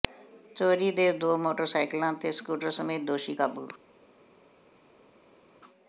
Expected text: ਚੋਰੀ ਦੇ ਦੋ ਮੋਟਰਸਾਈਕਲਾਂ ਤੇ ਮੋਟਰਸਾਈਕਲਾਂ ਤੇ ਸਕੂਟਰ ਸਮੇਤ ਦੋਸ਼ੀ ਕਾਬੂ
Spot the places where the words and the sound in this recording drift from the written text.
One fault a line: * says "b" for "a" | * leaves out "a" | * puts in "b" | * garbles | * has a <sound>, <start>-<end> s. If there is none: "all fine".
* leaves out "ਮੋਟਰਸਾਈਕਲਾਂ ਤੇ"